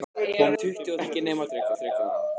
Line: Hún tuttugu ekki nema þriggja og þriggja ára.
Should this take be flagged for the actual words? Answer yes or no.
no